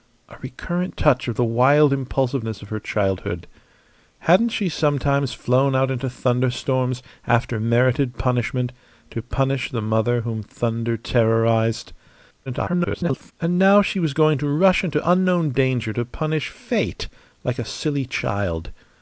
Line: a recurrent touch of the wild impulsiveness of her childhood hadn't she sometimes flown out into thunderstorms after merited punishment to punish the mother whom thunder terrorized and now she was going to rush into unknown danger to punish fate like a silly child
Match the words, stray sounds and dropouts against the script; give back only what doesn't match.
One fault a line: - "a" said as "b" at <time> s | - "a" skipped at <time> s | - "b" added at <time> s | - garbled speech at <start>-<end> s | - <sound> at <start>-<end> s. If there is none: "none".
- garbled speech at 12.5-13.3 s